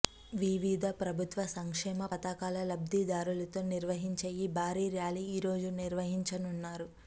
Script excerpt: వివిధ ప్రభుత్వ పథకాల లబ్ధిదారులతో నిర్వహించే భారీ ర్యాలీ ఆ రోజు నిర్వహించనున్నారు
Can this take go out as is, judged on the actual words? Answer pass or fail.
fail